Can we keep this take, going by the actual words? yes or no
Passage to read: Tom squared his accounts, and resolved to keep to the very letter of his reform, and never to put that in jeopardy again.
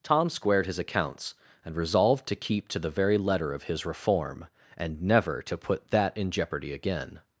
yes